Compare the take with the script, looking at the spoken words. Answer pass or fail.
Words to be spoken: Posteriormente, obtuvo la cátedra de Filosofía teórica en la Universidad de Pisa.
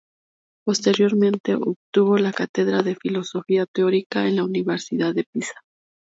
pass